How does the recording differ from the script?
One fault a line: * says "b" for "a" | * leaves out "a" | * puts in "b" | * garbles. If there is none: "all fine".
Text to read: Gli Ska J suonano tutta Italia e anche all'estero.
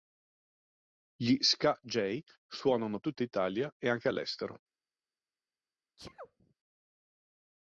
all fine